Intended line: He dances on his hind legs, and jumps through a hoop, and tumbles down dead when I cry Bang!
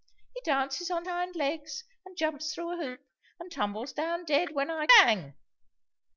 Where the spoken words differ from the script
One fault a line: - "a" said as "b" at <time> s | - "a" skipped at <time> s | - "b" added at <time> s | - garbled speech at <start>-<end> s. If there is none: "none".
- "his" skipped at 1.1 s
- "cry" skipped at 4.9 s